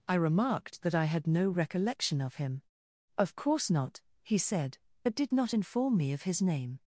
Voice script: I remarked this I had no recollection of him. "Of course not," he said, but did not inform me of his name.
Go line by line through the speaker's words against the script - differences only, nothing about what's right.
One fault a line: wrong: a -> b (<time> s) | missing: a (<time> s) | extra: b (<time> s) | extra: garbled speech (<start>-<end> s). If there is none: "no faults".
wrong: this -> that (0.8 s)